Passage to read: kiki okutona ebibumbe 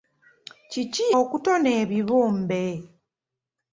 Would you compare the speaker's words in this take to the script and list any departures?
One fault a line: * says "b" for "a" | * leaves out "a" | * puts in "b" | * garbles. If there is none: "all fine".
all fine